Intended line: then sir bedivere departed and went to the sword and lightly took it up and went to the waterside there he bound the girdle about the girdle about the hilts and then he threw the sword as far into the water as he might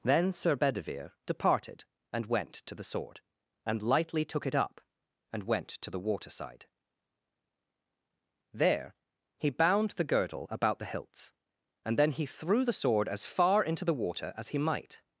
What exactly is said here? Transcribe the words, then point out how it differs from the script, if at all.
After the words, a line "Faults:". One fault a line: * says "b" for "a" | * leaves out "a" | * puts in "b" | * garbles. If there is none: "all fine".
then sir bedivere departed and went to the sword and lightly took it up and went to the waterside there he bound the girdle about the hilts and then he threw the sword as far into the water as he might
Faults:
* leaves out "girdle about the"